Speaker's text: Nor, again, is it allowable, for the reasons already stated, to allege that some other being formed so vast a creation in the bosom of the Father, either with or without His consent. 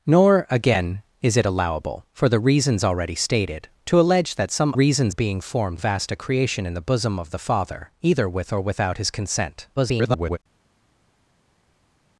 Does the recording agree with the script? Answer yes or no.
no